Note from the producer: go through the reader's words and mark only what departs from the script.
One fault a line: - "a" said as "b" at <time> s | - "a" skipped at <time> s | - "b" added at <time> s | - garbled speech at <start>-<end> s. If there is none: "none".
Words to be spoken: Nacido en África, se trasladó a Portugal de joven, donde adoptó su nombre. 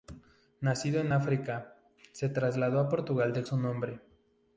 - "joven donde adoptó" skipped at 3.4 s